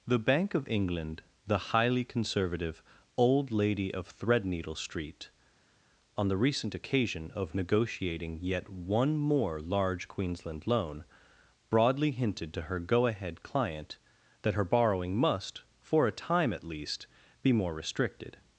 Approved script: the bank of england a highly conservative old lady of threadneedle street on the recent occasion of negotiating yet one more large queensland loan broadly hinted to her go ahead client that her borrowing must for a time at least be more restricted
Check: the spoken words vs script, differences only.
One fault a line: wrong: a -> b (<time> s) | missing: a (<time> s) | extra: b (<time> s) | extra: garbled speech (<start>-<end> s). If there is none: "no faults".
wrong: a -> the (1.4 s)